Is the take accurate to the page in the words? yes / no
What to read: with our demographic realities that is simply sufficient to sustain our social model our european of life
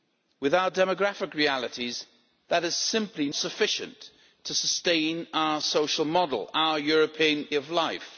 yes